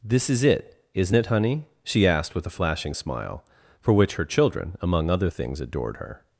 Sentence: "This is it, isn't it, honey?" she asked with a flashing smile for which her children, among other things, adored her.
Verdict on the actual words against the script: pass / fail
pass